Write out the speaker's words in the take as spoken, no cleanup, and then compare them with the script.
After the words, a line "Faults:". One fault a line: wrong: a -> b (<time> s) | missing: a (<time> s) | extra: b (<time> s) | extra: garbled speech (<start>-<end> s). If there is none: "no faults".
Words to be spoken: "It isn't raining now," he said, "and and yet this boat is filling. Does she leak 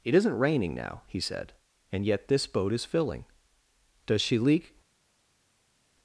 "It isn't raining now," he said, "and yet this boat is filling. Does she leak
Faults:
missing: and (2.0 s)